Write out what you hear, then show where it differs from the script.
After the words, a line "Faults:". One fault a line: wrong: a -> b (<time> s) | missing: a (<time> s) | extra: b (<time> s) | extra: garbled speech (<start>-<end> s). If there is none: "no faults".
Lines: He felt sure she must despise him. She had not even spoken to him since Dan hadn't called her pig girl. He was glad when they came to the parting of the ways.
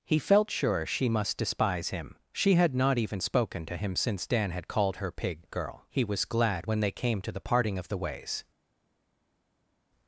He felt sure she must despise him. She had not even spoken to him since Dan had called her pig girl. He was glad when they came to the parting of the ways.
Faults:
wrong: hadn't -> had (4.5 s)